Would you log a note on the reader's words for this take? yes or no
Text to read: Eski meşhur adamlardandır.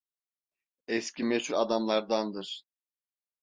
no